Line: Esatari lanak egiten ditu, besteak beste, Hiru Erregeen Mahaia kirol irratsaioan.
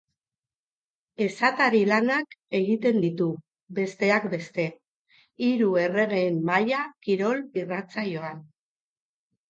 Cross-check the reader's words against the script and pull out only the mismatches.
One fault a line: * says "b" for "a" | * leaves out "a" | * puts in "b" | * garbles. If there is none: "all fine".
all fine